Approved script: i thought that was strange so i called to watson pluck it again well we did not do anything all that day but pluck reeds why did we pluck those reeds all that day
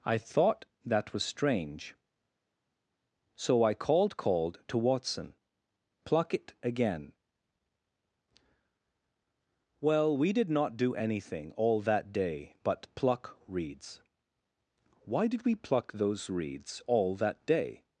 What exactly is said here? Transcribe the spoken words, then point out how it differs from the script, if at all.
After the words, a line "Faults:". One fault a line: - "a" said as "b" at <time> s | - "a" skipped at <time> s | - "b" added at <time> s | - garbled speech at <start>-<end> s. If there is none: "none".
i thought that was strange so i called called to watson pluck it again well we did not do anything all that day but pluck reeds why did we pluck those reeds all that day
Faults:
- "called" added at 4.2 s